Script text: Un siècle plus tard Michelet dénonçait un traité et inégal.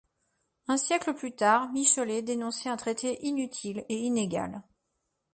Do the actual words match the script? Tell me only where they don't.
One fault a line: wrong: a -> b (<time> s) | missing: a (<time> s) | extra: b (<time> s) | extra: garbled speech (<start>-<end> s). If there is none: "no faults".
extra: inutile (3.2 s)